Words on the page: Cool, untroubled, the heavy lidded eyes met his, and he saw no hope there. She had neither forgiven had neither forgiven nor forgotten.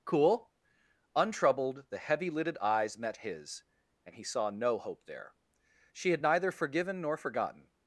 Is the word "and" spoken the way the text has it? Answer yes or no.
yes